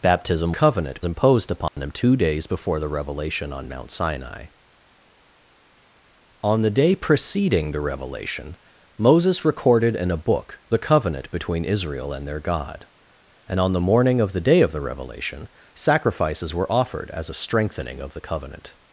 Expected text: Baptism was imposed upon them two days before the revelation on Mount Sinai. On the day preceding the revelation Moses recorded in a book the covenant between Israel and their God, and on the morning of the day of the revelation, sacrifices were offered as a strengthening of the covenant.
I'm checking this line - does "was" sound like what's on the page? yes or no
no